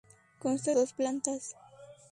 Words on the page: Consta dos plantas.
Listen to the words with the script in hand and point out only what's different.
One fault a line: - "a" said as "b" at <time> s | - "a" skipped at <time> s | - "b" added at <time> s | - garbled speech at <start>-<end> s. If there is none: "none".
none